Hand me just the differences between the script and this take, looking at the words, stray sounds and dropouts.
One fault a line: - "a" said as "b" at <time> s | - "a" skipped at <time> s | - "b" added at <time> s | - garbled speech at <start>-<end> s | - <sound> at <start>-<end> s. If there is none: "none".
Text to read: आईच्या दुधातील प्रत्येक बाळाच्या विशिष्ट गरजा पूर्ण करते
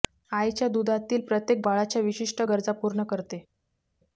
none